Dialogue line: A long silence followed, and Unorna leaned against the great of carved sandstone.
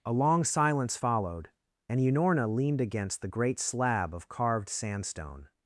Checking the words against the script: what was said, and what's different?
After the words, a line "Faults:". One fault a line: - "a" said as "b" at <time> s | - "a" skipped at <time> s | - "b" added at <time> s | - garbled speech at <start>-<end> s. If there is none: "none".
A long silence followed, and Unorna leaned against the great slab of carved sandstone.
Faults:
- "slab" added at 3.6 s